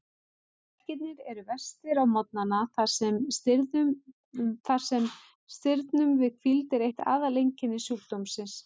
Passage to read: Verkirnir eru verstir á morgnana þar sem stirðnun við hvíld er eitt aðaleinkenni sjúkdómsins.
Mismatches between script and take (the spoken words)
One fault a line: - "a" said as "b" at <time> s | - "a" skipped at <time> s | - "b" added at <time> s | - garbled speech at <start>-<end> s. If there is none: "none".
none